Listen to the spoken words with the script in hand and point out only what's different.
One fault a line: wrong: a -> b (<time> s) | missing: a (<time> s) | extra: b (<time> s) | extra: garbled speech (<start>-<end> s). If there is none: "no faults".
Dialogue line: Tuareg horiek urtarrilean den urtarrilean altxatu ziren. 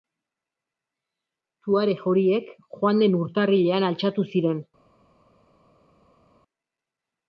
wrong: urtarrilean -> joan (2.8 s)